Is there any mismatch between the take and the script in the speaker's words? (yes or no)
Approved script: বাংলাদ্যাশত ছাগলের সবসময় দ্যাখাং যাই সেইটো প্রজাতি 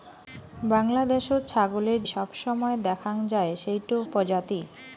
no